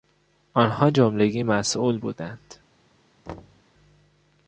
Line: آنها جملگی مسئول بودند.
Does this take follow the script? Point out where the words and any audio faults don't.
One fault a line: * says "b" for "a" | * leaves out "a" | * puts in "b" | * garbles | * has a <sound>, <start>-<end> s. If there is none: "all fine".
* has a thud, 3.3-3.6 s